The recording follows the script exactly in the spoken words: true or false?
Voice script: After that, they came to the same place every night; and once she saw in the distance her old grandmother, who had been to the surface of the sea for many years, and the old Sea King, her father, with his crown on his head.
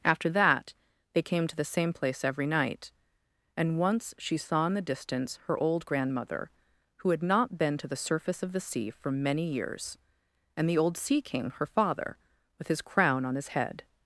false